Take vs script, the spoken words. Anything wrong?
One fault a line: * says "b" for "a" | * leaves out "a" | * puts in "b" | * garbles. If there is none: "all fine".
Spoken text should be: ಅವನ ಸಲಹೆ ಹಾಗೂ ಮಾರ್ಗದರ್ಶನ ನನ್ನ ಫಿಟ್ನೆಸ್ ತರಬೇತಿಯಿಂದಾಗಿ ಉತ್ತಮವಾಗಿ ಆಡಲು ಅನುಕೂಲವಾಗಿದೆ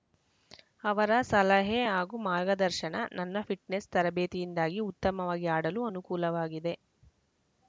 * says "ಅವರ" for "ಅವನ"